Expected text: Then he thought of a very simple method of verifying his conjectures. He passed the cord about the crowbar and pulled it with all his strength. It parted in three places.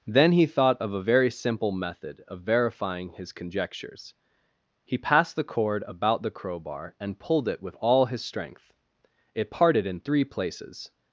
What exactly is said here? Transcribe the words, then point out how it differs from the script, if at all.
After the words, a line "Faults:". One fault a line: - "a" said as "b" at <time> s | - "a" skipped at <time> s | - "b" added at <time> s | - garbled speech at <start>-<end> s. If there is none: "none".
Then he thought of a very simple method of verifying his conjectures. He passed the cord about the crowbar and pulled it with all his strength. It parted in three places.
Faults:
none